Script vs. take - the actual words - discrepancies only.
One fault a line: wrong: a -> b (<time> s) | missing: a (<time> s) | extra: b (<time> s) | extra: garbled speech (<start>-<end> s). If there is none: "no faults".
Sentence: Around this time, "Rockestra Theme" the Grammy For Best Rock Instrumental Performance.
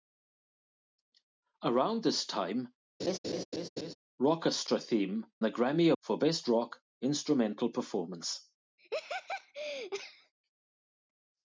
no faults